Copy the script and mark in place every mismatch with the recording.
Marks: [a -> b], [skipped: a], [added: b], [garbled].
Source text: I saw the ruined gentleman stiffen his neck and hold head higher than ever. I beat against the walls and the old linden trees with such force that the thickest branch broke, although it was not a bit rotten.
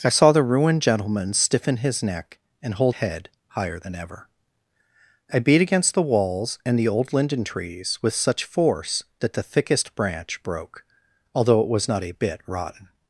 I saw the ruined gentleman stiffen his neck and hold head higher than ever. I beat against the walls and the old linden trees with such force that the thickest branch broke, although it was not a bit rotten.